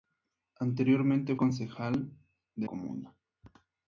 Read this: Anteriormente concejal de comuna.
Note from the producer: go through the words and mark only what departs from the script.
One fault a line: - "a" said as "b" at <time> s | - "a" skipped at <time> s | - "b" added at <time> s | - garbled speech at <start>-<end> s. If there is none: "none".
none